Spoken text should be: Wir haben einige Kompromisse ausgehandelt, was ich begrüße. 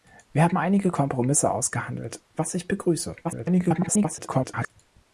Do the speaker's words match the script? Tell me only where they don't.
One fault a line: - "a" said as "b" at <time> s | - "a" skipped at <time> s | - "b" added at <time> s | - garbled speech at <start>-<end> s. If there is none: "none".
- garbled speech at 3.2-4.7 s